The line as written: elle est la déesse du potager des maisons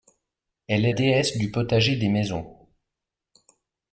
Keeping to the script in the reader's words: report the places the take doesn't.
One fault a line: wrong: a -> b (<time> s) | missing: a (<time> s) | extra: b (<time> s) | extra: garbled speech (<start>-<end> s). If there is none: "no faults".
missing: la (0.9 s)